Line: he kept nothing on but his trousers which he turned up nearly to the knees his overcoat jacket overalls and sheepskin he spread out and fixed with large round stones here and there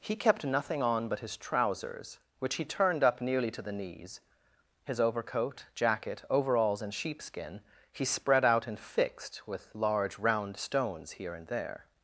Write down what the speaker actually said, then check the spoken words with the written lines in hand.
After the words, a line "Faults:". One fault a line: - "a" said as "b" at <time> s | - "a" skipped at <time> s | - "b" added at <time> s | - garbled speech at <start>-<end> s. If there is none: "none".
he kept nothing on but his trousers which he turned up nearly to the knees his overcoat jacket overalls and sheepskin he spread out and fixed with large round stones here and there
Faults:
none